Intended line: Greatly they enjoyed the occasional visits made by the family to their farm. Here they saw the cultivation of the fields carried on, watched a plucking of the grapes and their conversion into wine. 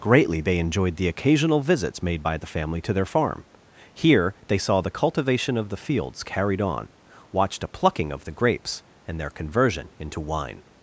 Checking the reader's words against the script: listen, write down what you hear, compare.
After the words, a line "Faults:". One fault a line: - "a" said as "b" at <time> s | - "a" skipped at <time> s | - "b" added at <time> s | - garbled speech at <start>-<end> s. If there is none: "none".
Greatly they enjoyed the occasional visits made by the family to their farm. Here they saw the cultivation of the fields carried on, watched a plucking of the grapes and their conversion into wine.
Faults:
none